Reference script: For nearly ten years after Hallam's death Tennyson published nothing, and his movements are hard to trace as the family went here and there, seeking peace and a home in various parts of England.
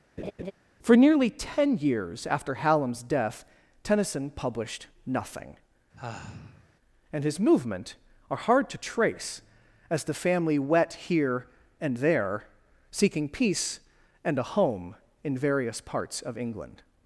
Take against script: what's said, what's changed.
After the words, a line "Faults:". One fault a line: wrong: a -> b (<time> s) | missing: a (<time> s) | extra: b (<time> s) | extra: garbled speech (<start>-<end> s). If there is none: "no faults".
For nearly ten years after Hallam's death Tennyson published nothing, and his movement are hard to trace as the family wet here and there, seeking peace and a home in various parts of England.
Faults:
wrong: movements -> movement (7.4 s)
wrong: went -> wet (10.6 s)